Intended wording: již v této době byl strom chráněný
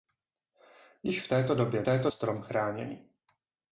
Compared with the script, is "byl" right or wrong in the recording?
wrong